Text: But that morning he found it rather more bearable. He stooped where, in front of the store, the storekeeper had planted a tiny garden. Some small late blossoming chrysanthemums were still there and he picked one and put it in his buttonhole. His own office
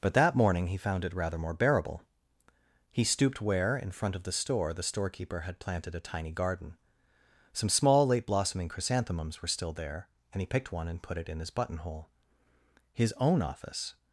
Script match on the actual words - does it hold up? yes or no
yes